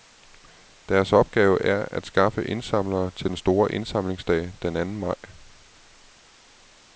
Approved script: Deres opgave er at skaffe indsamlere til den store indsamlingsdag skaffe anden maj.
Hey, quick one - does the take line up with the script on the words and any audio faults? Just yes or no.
no